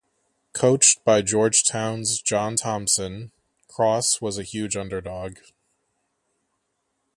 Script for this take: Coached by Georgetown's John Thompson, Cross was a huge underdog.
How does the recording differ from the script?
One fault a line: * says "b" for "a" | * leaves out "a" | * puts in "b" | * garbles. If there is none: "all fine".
all fine